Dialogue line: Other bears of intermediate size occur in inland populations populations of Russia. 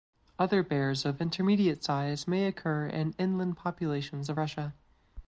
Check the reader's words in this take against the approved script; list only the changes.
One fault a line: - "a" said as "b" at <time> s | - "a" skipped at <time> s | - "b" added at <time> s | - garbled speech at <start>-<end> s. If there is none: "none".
- "may" added at 2.3 s
- "populations" skipped at 4.3 s